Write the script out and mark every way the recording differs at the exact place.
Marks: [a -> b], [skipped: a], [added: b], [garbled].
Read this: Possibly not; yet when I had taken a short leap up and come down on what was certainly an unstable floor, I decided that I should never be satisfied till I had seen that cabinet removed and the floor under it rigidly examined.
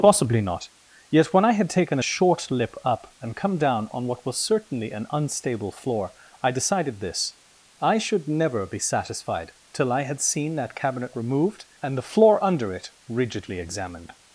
Possibly not; yet when I had taken a short [leap -> lip] up and come down on what was certainly an unstable floor, I decided [that -> this] I should never be satisfied till I had seen that cabinet removed and the floor under it rigidly examined.